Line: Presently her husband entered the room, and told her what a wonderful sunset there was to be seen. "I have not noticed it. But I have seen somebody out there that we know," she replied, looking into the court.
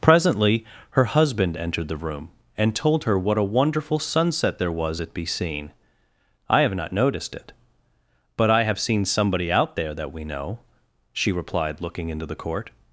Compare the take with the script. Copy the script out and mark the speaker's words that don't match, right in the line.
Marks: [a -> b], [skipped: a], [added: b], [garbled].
Presently her husband entered the room, and told her what a wonderful sunset there was [to -> at] be seen. "I have not noticed it. But I have seen somebody out there that we know," she replied, looking into the court.